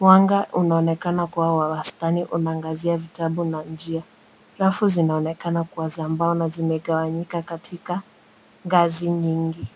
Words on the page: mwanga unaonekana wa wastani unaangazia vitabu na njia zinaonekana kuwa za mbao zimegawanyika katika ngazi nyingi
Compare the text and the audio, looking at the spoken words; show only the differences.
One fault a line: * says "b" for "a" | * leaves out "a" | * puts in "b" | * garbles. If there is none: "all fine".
* puts in "kuwa"
* puts in "rafu"
* puts in "na"